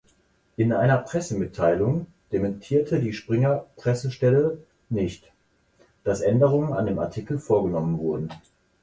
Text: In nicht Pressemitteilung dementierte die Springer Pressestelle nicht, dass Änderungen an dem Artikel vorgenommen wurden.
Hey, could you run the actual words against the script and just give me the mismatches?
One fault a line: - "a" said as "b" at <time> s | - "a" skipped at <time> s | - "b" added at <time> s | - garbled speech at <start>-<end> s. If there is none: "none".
- "nicht" said as "einer" at 0.7 s